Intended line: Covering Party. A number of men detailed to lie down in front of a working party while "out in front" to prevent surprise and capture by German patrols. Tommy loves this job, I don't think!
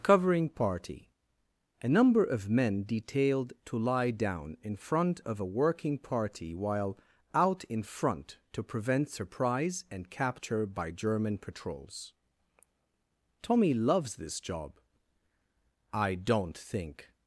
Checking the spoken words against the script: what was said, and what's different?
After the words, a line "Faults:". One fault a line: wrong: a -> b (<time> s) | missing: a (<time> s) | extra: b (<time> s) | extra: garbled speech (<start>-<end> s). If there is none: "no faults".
Covering Party. A number of men detailed to lie down in front of a working party while "out in front" to prevent surprise and capture by German patrols. Tommy loves this job, I don't think!
Faults:
no faults